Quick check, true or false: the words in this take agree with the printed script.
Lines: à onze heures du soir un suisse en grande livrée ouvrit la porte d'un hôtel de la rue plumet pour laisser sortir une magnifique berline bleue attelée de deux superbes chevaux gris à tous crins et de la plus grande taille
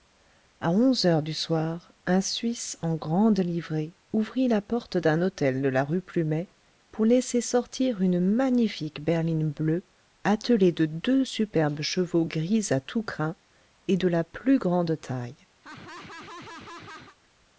true